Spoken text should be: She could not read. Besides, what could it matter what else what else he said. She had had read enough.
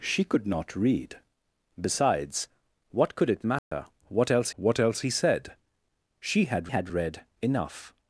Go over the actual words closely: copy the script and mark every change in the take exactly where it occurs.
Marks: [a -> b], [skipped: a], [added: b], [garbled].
She could not read. Besides, what could it matter what else what else he said. She had had read enough.